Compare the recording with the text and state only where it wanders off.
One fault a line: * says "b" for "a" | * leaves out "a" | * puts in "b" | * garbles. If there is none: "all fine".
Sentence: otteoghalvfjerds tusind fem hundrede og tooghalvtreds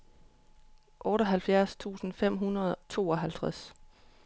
* leaves out "og"